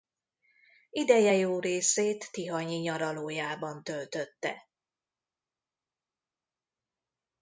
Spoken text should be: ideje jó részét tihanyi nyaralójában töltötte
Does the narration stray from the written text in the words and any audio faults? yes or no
no